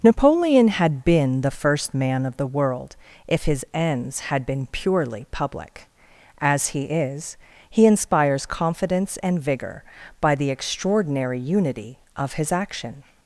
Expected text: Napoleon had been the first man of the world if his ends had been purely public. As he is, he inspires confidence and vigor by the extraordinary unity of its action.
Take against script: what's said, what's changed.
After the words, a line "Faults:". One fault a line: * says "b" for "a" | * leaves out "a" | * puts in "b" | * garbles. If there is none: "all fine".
Napoleon had been the first man of the world if his ends had been purely public. As he is, he inspires confidence and vigor by the extraordinary unity of his action.
Faults:
* says "his" for "its"